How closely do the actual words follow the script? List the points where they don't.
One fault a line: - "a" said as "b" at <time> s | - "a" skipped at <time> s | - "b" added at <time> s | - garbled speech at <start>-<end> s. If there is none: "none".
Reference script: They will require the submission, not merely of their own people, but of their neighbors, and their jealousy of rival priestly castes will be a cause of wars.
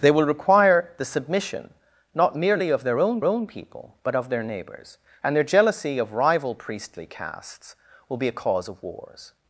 - "own" added at 3.2 s